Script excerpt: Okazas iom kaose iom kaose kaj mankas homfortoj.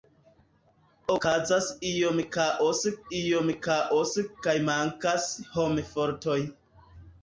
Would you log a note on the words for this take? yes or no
no